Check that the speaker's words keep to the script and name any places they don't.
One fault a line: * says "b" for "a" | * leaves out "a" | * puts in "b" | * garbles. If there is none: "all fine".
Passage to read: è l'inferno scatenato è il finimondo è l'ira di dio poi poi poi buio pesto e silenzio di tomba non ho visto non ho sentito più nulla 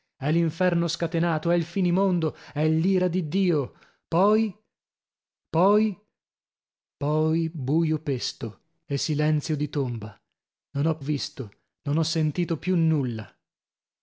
all fine